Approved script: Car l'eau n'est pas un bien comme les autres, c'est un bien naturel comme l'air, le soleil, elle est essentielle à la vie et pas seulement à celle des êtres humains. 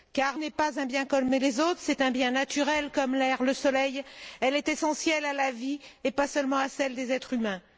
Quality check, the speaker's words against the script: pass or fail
fail